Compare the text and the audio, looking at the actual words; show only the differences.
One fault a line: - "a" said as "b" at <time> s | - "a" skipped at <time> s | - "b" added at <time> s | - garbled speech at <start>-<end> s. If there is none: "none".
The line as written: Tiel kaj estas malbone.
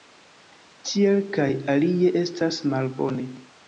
- "alie" added at 1.7 s